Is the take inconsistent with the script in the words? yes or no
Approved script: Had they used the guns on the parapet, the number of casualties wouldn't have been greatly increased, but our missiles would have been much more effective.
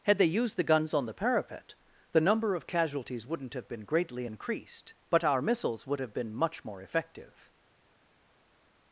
no